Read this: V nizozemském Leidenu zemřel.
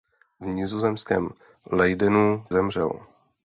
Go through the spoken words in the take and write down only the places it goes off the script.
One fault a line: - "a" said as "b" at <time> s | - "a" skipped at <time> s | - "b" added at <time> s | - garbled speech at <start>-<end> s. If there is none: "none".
none